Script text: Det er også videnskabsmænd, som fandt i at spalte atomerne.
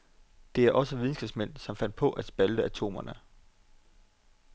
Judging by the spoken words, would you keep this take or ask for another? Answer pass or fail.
fail